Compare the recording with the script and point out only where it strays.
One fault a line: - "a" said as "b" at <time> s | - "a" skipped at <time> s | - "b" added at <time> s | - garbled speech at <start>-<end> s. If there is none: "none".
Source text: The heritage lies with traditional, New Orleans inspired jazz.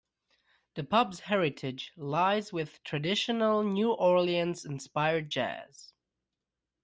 - "pub's" added at 0.8 s